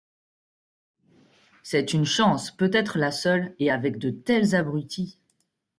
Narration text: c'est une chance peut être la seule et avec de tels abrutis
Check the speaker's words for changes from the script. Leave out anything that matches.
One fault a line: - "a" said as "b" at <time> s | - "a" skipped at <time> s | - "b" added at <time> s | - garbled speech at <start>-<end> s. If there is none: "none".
none